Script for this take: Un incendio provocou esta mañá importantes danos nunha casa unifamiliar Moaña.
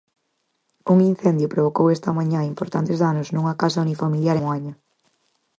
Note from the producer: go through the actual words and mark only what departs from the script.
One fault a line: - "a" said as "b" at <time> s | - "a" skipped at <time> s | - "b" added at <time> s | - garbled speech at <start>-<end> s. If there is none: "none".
none